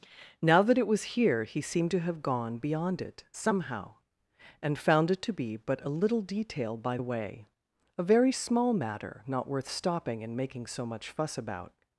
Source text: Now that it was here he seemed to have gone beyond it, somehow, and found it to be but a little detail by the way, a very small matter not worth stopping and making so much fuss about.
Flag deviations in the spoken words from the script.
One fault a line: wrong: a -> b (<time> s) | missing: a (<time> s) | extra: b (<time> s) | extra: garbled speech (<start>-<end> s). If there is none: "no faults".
no faults